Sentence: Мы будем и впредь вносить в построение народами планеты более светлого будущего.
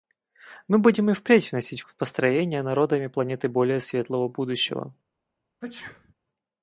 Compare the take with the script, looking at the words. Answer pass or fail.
pass